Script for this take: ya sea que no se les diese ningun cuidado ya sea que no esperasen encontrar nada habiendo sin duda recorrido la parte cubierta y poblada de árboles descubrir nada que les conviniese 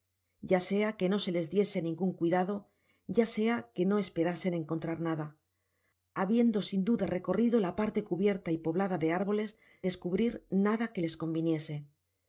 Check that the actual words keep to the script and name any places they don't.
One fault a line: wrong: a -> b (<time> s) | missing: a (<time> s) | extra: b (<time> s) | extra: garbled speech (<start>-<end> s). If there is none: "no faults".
no faults